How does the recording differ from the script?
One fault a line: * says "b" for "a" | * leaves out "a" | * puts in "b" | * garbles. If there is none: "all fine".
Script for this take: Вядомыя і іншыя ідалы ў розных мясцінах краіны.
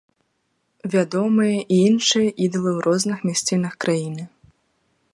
all fine